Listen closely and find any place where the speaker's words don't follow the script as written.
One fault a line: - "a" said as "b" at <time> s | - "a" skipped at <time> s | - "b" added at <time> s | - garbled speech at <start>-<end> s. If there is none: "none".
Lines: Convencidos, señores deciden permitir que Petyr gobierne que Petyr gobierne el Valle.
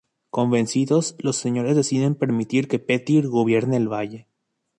- "los" added at 1.2 s
- "que Petyr gobierne" skipped at 3.8 s